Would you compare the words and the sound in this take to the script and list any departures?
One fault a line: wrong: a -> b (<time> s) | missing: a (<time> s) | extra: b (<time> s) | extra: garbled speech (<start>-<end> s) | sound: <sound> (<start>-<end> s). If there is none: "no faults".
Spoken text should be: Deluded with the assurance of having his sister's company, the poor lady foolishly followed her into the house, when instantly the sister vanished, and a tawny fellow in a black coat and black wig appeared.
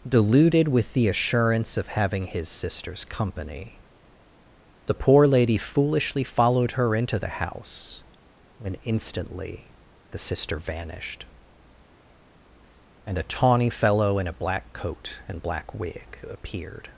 no faults